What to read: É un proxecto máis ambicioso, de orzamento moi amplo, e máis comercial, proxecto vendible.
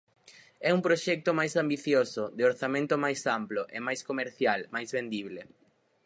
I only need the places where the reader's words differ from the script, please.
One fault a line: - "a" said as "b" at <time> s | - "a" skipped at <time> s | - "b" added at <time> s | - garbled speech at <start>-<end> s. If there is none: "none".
- "moi" said as "máis" at 3.0 s
- "proxecto" said as "máis" at 4.7 s